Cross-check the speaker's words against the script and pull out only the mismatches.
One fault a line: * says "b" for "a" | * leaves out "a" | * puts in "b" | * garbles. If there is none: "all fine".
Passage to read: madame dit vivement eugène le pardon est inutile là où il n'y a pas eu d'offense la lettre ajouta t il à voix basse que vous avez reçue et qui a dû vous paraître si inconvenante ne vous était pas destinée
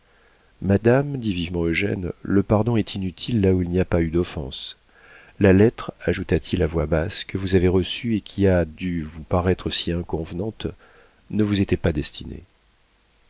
all fine